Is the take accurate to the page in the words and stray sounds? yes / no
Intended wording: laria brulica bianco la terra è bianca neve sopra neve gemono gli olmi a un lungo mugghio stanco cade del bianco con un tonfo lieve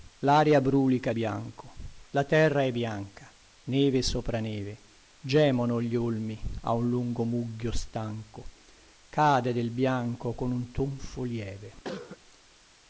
no